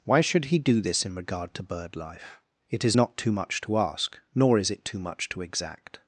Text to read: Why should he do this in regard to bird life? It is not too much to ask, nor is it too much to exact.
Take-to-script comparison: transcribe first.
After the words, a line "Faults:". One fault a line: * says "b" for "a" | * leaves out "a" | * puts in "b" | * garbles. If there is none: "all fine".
Why should he do this in regard to bird life? It is not too much to ask, nor is it too much to exact.
Faults:
all fine